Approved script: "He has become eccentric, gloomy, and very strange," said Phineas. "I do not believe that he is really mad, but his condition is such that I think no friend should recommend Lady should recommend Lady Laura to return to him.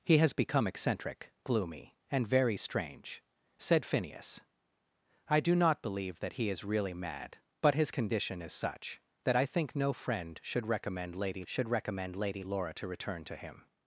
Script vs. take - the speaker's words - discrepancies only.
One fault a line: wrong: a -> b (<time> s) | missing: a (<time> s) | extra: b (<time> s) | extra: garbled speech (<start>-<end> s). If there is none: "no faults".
no faults